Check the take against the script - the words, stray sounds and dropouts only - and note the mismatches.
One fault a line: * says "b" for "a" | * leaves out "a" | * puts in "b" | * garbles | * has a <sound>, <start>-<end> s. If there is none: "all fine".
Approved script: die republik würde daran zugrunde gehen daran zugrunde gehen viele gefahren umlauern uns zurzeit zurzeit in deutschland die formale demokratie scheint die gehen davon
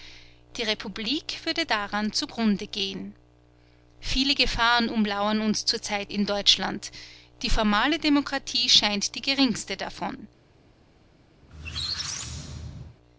* leaves out "daran zugrunde gehen"
* leaves out "zurzeit"
* says "geringste" for "gehen"
* has a squeak, 11.4-13.0 s